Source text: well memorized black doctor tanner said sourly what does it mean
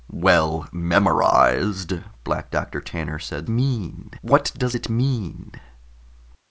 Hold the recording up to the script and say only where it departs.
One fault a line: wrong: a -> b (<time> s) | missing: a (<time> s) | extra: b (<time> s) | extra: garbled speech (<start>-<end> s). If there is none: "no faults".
wrong: sourly -> mean (3.5 s)